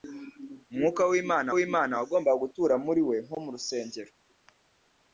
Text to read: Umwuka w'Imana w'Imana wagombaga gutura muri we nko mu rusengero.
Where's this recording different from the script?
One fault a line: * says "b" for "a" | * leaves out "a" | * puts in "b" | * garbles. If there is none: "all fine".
all fine